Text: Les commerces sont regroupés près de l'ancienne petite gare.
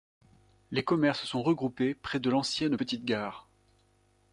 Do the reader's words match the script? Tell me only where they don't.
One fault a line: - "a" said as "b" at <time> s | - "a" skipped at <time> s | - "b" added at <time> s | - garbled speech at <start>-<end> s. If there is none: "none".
none